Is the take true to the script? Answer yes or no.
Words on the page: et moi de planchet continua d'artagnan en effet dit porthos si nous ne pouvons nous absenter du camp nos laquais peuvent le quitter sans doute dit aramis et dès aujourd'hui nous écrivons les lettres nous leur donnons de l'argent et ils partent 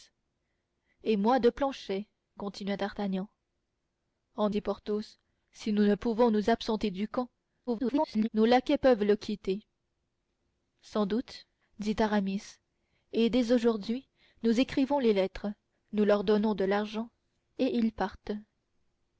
no